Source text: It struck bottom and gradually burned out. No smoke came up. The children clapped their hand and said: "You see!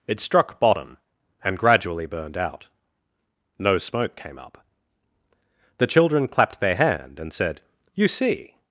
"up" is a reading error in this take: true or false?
false